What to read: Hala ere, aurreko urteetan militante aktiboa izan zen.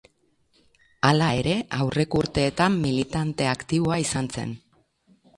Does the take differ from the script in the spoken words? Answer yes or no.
no